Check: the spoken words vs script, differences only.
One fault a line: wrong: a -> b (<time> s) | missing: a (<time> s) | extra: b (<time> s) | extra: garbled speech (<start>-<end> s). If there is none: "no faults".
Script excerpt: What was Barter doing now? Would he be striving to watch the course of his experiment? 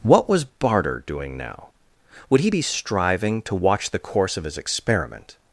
no faults